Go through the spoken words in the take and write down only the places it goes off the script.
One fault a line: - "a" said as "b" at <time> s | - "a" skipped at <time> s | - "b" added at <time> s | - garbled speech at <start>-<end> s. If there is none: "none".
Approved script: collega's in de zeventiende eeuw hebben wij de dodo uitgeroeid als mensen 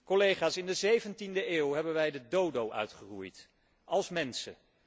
none